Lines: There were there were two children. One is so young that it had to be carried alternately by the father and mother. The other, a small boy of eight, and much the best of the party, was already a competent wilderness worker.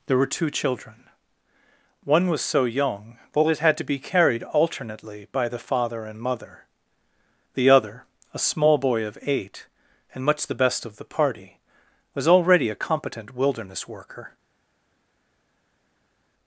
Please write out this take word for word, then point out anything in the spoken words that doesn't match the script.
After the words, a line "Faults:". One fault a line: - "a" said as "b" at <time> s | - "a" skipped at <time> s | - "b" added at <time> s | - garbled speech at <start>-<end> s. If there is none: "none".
There were two children. One was so young that it had to be carried alternately by the father and mother. The other, a small boy of eight, and much the best of the party, was already a competent wilderness worker.
Faults:
- "there were" skipped at 0.3 s
- "is" said as "was" at 2.3 s